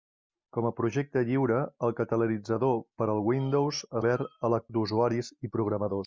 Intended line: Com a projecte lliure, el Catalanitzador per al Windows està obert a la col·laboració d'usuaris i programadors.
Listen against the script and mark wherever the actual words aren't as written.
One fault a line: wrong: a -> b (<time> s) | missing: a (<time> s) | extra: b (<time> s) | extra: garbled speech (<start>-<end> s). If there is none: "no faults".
missing: està (3.9 s)
missing: col·laboració (4.6 s)